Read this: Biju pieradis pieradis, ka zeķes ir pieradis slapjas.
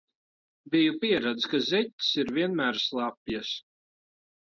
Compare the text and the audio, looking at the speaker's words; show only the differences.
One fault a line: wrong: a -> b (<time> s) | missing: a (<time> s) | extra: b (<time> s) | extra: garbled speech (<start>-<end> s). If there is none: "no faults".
missing: pieradis (1.5 s)
wrong: pieradis -> vienmēr (2.4 s)